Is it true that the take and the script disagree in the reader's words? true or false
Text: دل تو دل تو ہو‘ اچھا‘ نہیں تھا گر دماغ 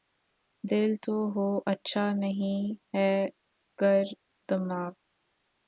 true